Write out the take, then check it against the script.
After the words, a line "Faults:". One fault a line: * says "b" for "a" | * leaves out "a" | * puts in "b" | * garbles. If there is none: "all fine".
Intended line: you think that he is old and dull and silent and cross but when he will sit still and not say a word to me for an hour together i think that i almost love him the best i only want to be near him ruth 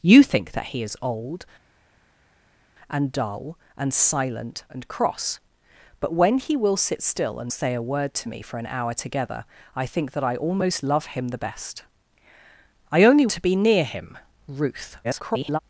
you think that he is old and dull and silent and cross but when he will sit still and say a word to me for an hour together i think that i almost love him the best i only to be near him ruth [garbled]
Faults:
* leaves out "not"
* leaves out "want"
* garbles